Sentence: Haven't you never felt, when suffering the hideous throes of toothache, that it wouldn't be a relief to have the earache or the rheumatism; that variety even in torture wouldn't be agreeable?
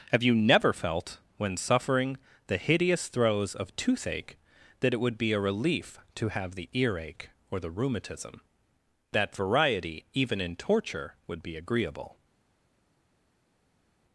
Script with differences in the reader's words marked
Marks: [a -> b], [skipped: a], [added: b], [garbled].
[Haven't -> Have] you never felt, when suffering the hideous throes of toothache, that it [wouldn't -> would] be a relief to have the earache or the rheumatism; that variety even in torture [wouldn't -> would] be agreeable?